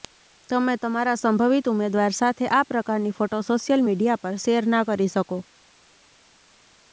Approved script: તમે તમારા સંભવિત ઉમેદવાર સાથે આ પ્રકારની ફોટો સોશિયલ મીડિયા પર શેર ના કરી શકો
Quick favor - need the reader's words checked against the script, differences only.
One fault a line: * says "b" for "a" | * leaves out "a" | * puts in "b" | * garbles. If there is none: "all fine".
all fine